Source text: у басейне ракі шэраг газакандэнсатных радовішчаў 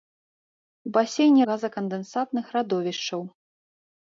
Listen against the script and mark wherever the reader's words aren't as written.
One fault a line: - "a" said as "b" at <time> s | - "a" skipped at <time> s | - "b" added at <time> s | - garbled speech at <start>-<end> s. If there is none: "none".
- "ракі шэраг" skipped at 1.4 s